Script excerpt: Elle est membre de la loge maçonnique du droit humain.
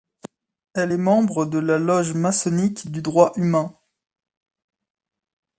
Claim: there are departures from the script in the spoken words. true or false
false